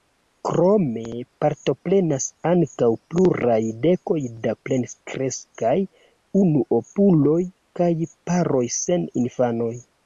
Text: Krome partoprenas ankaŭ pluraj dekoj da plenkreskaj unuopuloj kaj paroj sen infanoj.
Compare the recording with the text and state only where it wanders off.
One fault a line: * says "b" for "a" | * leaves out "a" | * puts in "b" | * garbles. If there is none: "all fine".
all fine